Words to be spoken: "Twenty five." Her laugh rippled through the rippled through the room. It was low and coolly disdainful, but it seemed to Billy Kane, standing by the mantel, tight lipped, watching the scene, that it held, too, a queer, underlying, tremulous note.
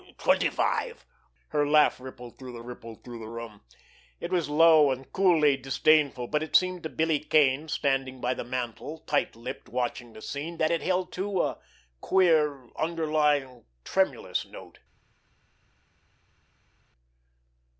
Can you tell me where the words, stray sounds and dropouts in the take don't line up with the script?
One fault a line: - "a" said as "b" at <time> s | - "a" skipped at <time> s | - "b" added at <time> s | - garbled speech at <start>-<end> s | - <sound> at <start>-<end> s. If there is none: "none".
none